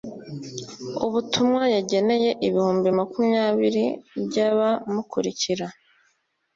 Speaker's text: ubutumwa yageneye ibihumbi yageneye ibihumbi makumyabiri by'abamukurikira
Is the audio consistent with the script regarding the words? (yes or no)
no